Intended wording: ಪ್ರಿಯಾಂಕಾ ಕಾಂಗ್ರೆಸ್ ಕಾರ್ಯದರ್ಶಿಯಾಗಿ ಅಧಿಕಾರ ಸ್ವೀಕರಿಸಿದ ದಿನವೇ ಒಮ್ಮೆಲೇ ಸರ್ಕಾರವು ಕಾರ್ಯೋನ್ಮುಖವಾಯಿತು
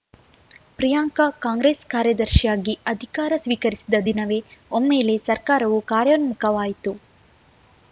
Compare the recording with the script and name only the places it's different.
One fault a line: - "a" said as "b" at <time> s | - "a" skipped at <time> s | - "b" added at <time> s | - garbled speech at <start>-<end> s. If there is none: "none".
none